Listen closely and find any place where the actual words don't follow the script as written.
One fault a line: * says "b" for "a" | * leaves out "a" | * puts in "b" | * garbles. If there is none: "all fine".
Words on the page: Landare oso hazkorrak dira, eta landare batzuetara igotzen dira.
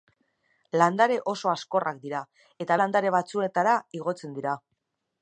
all fine